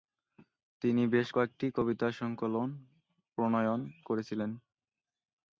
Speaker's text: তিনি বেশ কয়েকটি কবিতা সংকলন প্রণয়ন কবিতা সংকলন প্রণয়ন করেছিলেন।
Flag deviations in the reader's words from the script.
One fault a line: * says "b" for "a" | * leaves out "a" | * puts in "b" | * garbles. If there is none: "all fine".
* leaves out "কবিতা সংকলন প্রণয়ন"